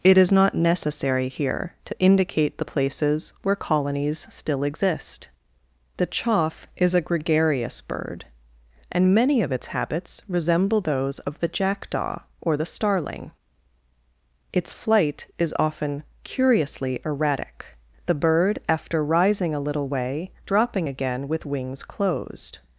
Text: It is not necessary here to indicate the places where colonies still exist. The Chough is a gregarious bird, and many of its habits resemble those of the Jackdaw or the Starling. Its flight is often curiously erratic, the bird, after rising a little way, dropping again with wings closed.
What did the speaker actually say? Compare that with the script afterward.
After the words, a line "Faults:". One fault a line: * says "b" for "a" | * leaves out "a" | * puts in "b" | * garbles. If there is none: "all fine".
It is not necessary here to indicate the places where colonies still exist. The Chough is a gregarious bird, and many of its habits resemble those of the Jackdaw or the Starling. Its flight is often curiously erratic, the bird, after rising a little way, dropping again with wings closed.
Faults:
all fine